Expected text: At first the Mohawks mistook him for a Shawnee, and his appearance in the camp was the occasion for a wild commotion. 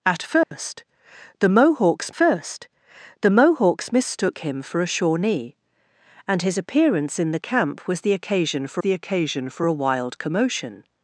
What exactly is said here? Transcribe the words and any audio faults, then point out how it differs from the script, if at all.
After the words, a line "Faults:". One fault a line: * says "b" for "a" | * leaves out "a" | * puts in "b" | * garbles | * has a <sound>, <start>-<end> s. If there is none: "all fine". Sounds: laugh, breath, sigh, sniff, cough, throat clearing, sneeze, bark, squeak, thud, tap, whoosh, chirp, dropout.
At first the Mohawks first the Mohawks mistook him for a Shawnee, and his appearance in the camp was the occasion for the occasion for a wild commotion.
Faults:
* has a dropout, 0.4-0.5 s
* puts in "first the Mohawks"
* puts in "the occasion for"